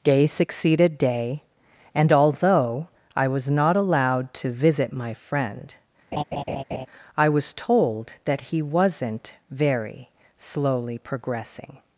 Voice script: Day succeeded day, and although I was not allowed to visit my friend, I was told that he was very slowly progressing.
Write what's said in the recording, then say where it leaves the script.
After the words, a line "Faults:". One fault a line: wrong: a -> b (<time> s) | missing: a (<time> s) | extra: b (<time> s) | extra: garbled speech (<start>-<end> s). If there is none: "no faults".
Day succeeded day, and although I was not allowed to visit my friend, I was told that he wasn't very slowly progressing.
Faults:
wrong: was -> wasn't (8.6 s)